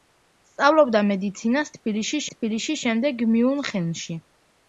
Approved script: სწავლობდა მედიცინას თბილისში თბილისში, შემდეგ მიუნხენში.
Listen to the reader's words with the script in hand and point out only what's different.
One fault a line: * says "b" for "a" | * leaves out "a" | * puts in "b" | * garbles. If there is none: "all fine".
all fine